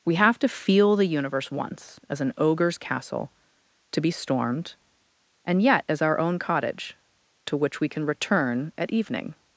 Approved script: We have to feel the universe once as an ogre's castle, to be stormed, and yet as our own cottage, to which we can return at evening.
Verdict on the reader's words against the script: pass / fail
pass